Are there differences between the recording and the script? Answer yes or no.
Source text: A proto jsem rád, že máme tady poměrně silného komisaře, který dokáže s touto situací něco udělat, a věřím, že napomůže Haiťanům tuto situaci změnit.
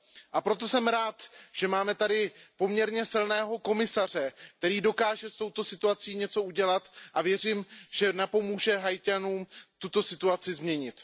no